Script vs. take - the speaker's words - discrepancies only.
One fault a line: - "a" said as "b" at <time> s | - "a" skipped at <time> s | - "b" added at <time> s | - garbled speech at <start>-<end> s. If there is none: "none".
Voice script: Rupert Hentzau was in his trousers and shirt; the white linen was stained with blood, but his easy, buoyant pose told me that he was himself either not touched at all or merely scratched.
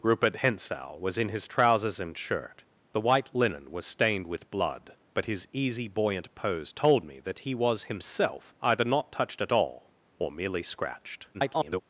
- garbled speech at 11.3-11.8 s